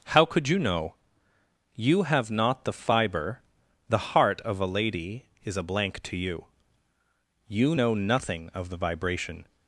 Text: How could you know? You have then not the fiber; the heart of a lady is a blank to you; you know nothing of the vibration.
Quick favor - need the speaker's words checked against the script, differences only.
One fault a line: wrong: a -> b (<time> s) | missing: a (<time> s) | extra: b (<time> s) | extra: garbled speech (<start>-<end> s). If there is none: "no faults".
missing: then (2.3 s)